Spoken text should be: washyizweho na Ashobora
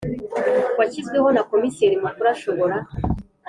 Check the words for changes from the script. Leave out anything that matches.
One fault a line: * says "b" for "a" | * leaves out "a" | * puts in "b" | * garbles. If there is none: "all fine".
* puts in "Komiseri Mukuru"